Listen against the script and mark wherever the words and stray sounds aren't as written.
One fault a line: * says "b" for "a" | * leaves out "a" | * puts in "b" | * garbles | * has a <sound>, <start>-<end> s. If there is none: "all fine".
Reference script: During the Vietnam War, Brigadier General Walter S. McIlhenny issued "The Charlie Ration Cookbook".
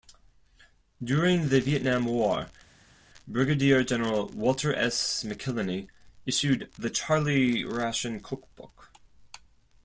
all fine